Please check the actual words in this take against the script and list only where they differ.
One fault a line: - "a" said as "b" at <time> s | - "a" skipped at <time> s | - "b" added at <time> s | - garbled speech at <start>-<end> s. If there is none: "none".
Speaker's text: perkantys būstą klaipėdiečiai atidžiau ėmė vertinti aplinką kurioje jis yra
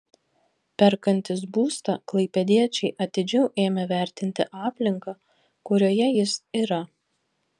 none